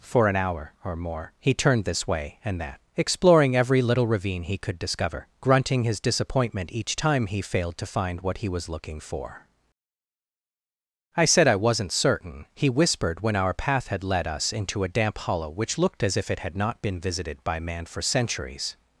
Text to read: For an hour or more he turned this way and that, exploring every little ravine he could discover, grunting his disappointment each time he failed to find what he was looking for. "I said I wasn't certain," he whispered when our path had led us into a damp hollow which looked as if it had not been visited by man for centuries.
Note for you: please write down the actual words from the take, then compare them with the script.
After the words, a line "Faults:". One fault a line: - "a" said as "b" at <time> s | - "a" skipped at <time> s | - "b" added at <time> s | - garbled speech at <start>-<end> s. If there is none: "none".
For an hour or more he turned this way and that, exploring every little ravine he could discover, grunting his disappointment each time he failed to find what he was looking for. "I said I wasn't certain," he whispered when our path had led us into a damp hollow which looked as if it had not been visited by man for centuries.
Faults:
none